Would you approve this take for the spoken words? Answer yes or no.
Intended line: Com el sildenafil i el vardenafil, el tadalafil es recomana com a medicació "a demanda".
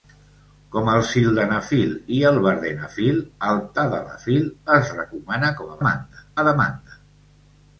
no